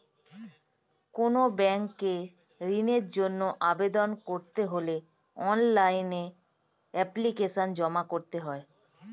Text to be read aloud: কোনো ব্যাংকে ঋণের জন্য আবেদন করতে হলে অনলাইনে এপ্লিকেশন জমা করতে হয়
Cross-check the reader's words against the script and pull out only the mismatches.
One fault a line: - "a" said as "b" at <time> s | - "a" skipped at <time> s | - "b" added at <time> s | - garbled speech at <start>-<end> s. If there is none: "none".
none